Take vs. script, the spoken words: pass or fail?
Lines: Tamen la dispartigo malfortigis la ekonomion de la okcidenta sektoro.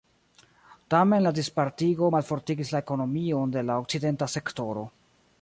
pass